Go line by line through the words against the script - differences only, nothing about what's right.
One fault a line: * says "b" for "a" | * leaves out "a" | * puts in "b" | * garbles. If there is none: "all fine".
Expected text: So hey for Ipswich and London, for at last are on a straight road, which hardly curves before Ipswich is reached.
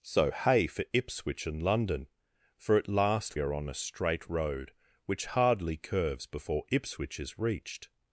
all fine